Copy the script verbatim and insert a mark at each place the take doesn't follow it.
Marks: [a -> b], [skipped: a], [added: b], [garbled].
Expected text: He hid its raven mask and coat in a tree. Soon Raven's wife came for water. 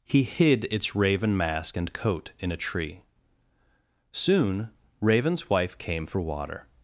He hid its raven mask and coat in a tree. Soon Raven's wife came for water.